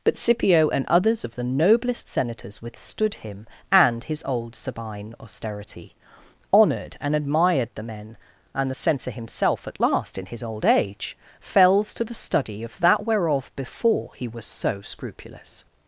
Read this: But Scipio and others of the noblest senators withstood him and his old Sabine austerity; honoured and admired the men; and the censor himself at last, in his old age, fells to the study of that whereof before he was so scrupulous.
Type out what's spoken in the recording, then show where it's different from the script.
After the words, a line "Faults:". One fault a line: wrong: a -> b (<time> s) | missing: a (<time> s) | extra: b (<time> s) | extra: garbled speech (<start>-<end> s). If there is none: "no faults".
But Scipio and others of the noblest senators withstood him and his old Sabine austerity; honoured and admired the men; and the censor himself at last, in his old age, fells to the study of that whereof before he was so scrupulous.
Faults:
no faults